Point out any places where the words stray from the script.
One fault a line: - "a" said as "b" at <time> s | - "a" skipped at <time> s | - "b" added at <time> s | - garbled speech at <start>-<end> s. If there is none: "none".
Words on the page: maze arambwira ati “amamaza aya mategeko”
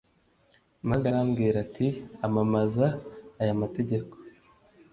none